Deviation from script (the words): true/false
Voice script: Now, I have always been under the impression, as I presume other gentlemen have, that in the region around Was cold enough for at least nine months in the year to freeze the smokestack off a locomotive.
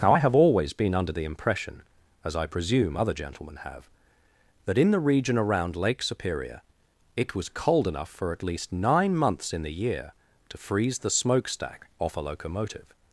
true